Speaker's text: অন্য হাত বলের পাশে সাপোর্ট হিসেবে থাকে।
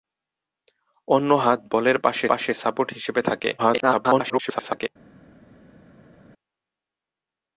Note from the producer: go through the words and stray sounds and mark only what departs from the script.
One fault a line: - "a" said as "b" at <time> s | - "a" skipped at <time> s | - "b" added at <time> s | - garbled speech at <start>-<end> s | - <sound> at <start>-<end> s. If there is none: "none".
- "পাশে" added at 2.3 s
- garbled speech at 3.6-4.9 s